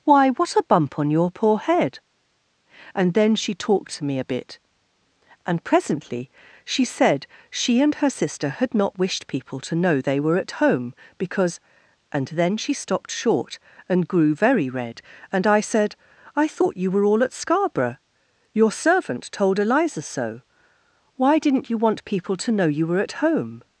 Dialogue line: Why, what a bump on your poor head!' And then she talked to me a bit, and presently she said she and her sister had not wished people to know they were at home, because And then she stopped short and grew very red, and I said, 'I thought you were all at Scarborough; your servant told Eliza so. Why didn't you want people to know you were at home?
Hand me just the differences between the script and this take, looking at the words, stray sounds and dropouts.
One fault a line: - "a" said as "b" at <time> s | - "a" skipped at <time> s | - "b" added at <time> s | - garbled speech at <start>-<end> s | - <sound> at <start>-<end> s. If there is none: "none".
none